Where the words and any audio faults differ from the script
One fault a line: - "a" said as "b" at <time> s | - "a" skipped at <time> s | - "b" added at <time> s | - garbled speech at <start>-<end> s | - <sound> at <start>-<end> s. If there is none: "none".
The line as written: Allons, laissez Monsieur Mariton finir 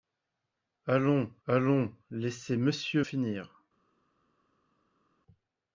- "allons" added at 1.5 s
- "Mariton" skipped at 3.0 s